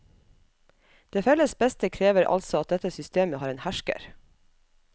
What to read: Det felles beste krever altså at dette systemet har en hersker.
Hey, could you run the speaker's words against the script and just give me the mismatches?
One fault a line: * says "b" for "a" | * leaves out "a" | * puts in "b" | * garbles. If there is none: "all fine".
all fine